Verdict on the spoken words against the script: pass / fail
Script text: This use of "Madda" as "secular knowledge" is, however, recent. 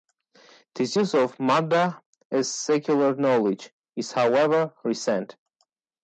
pass